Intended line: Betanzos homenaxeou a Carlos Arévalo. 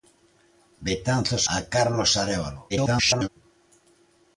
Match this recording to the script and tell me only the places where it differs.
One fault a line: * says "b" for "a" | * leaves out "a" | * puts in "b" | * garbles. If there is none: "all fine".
* leaves out "homenaxeou"
* garbles